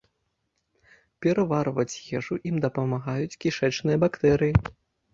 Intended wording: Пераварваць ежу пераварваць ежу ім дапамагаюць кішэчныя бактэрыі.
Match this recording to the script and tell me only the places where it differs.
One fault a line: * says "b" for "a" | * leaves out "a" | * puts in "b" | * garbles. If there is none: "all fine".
* leaves out "пераварваць ежу"